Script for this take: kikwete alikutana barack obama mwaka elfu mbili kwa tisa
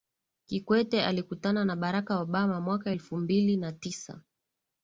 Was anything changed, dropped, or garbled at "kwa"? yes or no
yes